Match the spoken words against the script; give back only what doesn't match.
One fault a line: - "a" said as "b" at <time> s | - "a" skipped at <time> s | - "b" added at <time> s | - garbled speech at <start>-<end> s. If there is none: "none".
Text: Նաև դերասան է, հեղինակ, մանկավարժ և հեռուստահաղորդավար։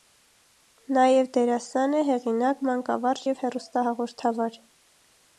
none